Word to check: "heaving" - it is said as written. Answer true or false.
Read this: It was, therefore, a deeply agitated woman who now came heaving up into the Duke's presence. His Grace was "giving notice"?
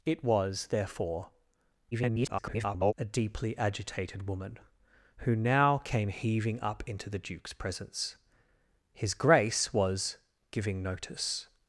true